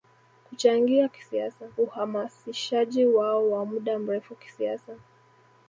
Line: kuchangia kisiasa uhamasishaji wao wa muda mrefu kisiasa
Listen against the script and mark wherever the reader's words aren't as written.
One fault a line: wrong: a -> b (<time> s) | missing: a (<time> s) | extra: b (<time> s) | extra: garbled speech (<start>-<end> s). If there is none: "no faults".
no faults